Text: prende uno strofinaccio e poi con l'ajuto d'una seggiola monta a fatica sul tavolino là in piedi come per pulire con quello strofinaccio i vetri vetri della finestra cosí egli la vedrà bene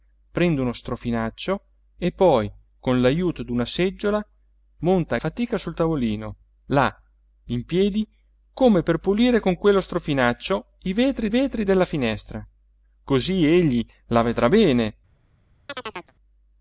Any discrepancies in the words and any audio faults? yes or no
yes